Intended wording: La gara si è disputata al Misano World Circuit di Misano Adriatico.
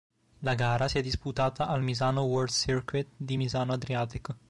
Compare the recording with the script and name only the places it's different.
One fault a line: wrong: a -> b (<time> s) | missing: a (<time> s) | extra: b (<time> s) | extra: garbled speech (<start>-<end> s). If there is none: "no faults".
no faults